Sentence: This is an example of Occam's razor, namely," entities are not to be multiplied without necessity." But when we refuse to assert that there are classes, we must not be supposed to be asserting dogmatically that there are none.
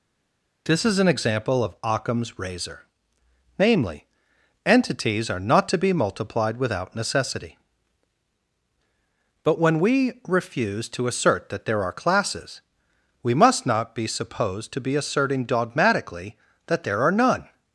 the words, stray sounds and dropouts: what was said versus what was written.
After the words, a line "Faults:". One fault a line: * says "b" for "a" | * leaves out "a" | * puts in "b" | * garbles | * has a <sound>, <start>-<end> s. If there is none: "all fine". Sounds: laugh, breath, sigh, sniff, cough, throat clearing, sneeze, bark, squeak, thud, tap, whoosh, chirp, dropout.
This is an example of Occam's razor, namely," entities are not to be multiplied without necessity." But when we refuse to assert that there are classes, we must not be supposed to be asserting dogmatically that there are none.
Faults:
all fine